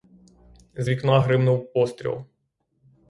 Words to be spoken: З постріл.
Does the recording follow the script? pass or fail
fail